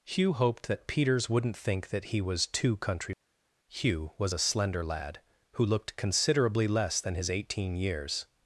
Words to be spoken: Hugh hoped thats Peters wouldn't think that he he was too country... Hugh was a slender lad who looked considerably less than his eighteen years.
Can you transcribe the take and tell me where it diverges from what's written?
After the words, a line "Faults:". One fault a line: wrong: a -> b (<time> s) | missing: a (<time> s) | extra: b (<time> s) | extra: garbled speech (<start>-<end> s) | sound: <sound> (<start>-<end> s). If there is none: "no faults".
Hugh hoped that Peters wouldn't think that he was too country... Hugh was a slender lad who looked considerably less than his eighteen years.
Faults:
wrong: thats -> that (0.7 s)
missing: he (2.2 s)